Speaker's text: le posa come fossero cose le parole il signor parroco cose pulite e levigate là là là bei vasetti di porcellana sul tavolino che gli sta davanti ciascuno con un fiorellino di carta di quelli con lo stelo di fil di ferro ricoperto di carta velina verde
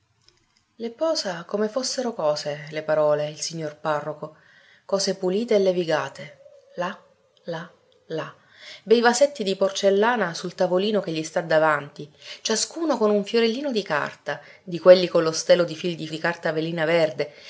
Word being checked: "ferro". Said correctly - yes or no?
no